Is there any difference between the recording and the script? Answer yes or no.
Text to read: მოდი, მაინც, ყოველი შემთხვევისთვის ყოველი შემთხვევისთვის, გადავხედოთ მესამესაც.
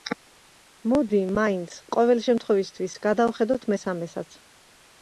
yes